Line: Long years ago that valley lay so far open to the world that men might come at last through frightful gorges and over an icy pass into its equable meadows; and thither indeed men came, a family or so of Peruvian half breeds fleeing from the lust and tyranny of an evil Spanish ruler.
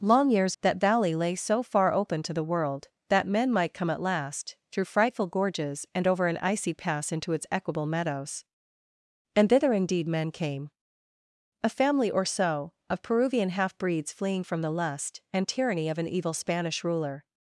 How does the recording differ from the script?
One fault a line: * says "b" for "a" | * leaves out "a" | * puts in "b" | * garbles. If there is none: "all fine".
* leaves out "ago"